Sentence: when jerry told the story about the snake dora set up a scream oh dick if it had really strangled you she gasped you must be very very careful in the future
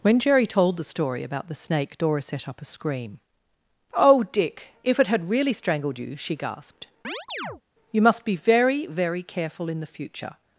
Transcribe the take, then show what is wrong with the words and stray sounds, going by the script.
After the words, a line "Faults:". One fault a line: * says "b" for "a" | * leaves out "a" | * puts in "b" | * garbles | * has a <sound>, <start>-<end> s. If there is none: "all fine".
when jerry told the story about the snake dora set up a scream oh dick if it had really strangled you she gasped you must be very very careful in the future
Faults:
* has a chirp, 7.0-7.6 s